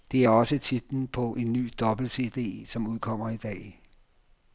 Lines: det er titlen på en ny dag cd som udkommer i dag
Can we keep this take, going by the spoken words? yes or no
no